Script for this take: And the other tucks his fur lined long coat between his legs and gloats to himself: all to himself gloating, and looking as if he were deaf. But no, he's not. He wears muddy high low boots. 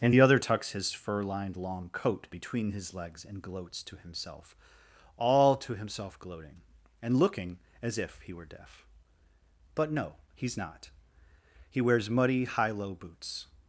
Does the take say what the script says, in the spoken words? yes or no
yes